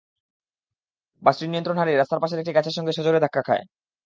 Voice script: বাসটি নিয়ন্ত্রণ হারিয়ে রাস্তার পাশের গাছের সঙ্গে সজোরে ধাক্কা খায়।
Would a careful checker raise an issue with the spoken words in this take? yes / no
yes